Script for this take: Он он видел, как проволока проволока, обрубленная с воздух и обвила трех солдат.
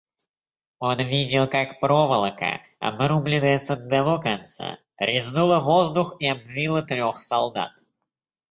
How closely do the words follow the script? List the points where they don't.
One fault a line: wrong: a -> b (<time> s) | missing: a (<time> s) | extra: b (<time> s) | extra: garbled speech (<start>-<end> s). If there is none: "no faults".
missing: он (1.0 s)
missing: проволока (2.6 s)
extra: одного конца резнула (3.7 s)